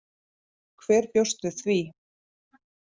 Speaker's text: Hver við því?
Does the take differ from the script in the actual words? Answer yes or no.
yes